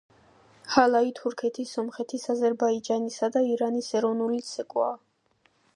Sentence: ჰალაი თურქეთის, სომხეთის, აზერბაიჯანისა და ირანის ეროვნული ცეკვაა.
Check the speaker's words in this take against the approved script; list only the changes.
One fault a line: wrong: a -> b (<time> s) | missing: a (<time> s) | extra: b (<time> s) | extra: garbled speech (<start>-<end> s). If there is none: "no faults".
no faults